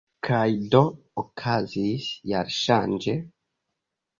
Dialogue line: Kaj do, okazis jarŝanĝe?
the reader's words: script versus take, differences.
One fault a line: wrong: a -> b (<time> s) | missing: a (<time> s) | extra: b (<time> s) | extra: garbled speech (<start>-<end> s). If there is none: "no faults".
no faults